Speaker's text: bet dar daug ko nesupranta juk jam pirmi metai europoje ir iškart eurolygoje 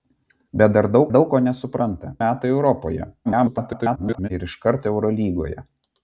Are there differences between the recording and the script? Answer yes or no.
yes